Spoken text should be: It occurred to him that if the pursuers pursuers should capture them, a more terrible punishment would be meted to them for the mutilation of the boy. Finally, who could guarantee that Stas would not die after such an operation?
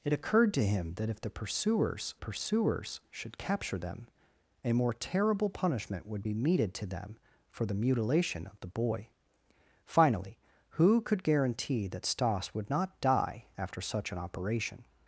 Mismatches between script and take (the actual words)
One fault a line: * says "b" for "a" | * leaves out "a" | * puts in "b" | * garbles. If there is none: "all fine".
all fine